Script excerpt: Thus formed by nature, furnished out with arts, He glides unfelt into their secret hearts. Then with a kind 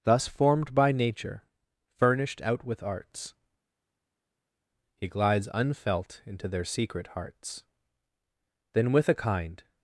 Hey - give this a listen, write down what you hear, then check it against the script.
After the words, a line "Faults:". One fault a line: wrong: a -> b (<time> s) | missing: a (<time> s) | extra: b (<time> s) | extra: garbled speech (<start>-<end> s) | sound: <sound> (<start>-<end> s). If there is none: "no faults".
Thus formed by nature, furnished out with arts, He glides unfelt into their secret hearts. Then with a kind
Faults:
no faults